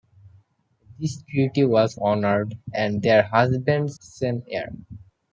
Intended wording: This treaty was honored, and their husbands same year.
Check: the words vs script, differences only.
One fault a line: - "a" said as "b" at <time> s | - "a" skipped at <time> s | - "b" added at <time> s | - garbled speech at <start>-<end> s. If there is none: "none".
none